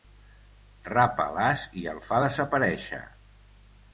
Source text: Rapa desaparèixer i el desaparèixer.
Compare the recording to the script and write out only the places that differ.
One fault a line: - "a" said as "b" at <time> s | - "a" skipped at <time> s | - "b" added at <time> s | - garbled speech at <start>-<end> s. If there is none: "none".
- "desaparèixer" said as "l'as" at 1.4 s
- "fa" added at 2.1 s